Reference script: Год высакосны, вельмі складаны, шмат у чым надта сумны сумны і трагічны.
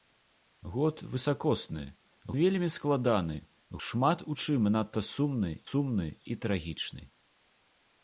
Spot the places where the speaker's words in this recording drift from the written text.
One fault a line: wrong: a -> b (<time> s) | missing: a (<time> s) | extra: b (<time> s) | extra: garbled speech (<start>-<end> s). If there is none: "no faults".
no faults